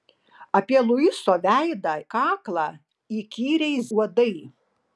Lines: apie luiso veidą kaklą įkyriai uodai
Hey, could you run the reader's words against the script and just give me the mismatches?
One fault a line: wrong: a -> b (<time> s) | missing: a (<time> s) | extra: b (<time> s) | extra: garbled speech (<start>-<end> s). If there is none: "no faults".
no faults